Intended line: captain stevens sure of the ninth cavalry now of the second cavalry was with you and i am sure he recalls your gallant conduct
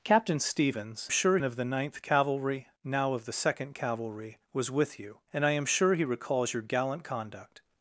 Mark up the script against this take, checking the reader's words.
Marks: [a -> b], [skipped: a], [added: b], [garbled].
captain stevens sure of the ninth cavalry now of the second cavalry was with you and i am sure he recalls your gallant conduct